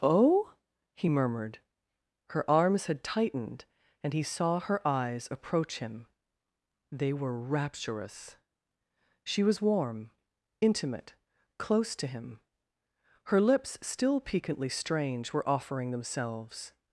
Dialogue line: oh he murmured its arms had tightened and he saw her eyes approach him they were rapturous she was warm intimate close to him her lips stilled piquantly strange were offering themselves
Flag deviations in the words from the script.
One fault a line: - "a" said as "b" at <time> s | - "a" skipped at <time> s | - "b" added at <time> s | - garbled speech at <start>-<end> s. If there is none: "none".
- "its" said as "her" at 2.3 s
- "stilled" said as "still" at 13.8 s